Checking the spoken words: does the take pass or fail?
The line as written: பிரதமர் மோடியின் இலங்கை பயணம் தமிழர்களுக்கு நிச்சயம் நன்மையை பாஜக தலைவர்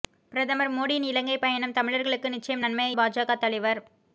pass